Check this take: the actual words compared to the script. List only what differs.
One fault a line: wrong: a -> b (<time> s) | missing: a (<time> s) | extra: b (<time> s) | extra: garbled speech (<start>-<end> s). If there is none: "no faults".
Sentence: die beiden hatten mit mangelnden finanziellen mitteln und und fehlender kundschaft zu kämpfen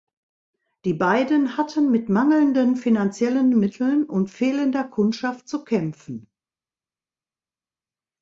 missing: und (4.3 s)